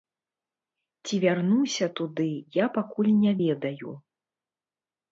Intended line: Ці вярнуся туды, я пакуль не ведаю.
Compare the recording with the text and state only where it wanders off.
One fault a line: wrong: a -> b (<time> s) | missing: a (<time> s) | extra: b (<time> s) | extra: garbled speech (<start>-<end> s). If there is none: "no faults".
no faults